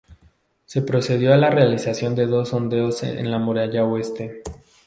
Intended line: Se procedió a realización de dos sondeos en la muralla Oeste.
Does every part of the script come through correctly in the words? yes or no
no